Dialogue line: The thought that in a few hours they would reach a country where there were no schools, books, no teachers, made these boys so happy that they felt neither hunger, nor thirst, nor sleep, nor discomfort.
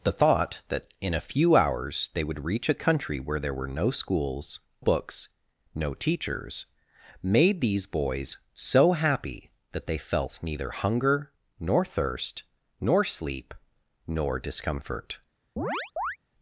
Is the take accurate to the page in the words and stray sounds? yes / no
no